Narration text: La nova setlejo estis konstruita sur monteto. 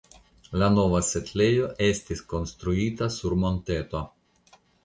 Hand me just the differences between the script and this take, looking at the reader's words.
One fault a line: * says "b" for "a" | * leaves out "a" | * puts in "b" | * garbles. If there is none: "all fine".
all fine